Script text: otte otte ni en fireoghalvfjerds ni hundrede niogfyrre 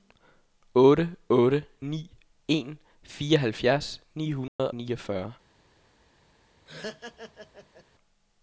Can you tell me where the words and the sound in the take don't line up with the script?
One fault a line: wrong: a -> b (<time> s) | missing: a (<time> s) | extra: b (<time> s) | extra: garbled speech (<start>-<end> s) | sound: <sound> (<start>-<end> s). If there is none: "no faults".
sound: dropout (4.5-4.6 s)
sound: laugh (6.7-7.8 s)